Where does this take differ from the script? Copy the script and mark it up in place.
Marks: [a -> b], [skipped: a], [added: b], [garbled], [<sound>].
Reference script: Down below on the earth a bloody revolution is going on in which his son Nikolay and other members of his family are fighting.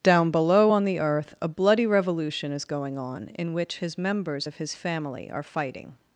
Down below on the earth a bloody revolution is going on in which his [skipped: son Nikolay and other] members of his family are fighting.